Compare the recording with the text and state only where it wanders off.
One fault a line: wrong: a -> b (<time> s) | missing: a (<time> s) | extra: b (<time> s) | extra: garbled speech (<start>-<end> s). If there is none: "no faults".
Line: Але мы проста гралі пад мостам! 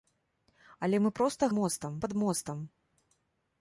wrong: гралі -> мостам (1.6 s)